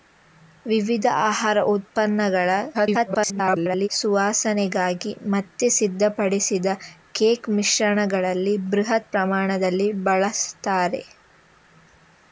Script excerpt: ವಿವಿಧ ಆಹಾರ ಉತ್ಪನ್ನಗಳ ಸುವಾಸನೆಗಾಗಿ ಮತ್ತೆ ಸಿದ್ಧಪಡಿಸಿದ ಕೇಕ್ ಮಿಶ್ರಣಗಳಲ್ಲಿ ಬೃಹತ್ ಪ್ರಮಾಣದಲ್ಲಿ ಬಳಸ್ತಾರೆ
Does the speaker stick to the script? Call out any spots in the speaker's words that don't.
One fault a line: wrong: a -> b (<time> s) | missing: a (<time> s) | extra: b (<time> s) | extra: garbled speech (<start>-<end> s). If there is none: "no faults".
extra: garbled speech (2.7-3.9 s)